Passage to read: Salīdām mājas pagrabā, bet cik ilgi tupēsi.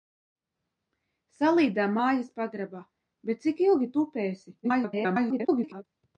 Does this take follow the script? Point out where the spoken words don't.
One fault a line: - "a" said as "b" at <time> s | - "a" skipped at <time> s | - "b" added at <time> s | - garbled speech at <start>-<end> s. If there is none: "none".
- garbled speech at 4.6-5.8 s